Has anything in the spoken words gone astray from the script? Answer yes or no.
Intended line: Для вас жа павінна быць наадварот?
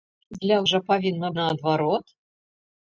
yes